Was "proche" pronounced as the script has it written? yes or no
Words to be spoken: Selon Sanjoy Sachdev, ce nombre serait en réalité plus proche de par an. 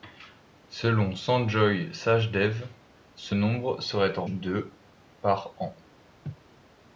no